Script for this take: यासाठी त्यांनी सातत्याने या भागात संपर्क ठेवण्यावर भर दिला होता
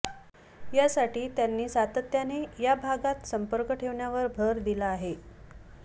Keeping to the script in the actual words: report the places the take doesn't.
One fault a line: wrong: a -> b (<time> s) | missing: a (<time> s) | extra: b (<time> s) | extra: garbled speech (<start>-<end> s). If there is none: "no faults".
wrong: होता -> आहे (4.9 s)